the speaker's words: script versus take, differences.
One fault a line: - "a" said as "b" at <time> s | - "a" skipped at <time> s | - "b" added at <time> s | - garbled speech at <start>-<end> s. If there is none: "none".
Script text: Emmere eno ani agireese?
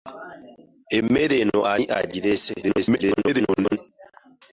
- garbled speech at 2.6-3.8 s